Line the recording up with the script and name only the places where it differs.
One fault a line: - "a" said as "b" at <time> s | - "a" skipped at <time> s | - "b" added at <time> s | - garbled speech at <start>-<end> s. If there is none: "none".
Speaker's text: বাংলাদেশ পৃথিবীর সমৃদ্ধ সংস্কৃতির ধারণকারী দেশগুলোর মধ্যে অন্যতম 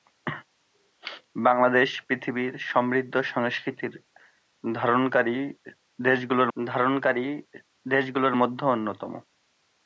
- "ধারণকারী দেশগুলোর" added at 6.6 s